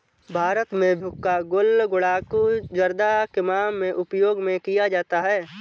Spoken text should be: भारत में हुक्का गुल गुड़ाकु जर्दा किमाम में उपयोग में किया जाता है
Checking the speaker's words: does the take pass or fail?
pass